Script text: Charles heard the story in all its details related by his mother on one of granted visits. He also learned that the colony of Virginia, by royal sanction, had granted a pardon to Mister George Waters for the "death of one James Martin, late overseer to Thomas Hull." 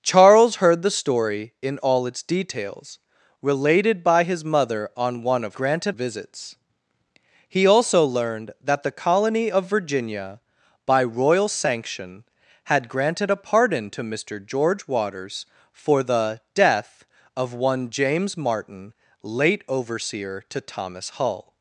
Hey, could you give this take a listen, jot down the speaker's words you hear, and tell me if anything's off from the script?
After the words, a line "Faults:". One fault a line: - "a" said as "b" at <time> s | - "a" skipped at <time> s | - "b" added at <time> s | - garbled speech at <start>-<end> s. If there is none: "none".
Charles heard the story in all its details related by his mother on one of granted visits. He also learned that the colony of Virginia, by royal sanction, had granted a pardon to Mister George Waters for the "death of one James Martin, late overseer to Thomas Hull."
Faults:
none